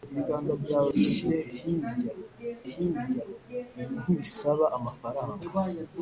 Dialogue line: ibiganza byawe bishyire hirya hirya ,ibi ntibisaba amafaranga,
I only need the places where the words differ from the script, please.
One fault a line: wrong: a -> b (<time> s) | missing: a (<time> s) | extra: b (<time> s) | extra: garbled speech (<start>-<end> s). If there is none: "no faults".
no faults